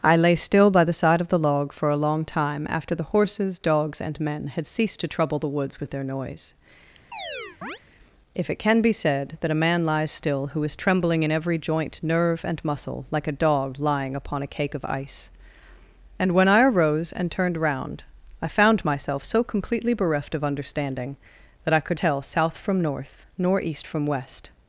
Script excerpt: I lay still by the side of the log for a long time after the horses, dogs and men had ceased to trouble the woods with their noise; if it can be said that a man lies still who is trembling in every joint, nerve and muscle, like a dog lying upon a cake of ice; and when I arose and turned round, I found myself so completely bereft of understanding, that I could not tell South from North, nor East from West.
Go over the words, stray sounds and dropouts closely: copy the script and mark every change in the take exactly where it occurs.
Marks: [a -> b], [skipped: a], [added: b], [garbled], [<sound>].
I lay still by the side of the log for a long time after the horses, dogs and men had ceased to trouble the woods with their noise; [chirp] if it can be said that a man lies still who is trembling in every joint, nerve and muscle, like a dog lying upon a cake of ice; and when I arose and turned round, I found myself so completely bereft of understanding, that I could [skipped: not] tell South from North, nor East from West.